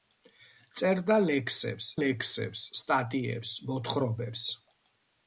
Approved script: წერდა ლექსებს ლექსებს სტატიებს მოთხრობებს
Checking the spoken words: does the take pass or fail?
pass